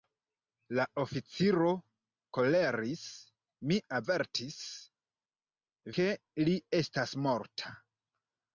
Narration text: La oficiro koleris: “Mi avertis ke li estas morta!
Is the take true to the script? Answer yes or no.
yes